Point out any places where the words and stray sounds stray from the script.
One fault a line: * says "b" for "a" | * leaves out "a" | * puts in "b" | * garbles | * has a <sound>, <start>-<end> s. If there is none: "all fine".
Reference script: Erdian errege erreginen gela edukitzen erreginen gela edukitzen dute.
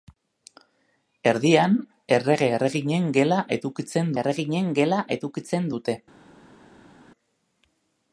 all fine